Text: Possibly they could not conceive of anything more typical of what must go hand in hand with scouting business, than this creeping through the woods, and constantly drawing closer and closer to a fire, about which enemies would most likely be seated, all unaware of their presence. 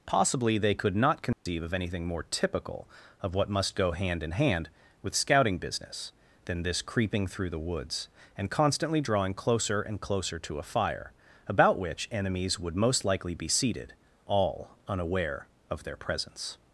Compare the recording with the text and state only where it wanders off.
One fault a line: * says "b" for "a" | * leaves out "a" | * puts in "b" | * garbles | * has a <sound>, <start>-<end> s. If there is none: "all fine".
* has a dropout, 1.3-1.5 s